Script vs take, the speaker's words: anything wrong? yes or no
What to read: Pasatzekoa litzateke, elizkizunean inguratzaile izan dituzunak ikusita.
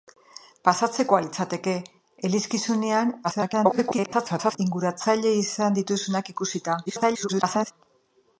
yes